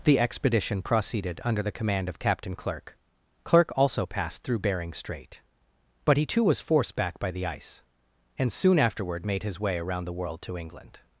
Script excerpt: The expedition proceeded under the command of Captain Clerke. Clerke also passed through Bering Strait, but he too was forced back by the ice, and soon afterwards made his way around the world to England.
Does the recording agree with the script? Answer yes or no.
no